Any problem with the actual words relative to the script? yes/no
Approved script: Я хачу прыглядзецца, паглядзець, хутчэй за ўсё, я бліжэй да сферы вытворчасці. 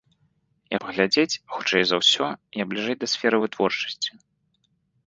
yes